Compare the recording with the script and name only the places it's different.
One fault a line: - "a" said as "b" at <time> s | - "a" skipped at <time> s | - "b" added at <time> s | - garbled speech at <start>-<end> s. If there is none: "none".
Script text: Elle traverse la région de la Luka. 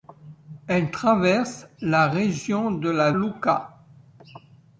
none